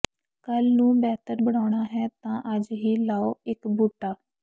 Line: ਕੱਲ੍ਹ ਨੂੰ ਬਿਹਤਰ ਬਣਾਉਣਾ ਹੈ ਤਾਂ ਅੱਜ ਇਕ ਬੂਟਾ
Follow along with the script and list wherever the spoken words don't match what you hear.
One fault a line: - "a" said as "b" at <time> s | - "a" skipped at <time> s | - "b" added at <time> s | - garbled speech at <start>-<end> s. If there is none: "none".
- "ਹੀ ਲਾਓ" added at 2.7 s